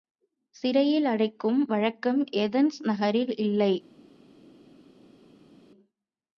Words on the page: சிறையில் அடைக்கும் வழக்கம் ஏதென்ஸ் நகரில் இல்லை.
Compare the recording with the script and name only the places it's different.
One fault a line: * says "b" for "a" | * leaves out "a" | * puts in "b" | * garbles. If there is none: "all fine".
all fine